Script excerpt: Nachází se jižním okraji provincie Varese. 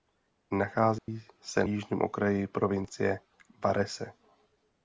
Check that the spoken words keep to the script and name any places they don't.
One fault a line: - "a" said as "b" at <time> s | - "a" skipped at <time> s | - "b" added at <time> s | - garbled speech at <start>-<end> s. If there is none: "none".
none